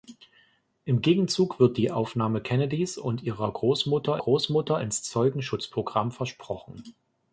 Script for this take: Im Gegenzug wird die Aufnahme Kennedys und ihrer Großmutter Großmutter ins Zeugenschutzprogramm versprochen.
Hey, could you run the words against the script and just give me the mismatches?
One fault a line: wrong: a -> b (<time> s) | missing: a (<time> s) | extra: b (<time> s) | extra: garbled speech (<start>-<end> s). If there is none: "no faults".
no faults